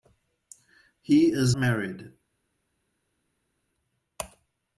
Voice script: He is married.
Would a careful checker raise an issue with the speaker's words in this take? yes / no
no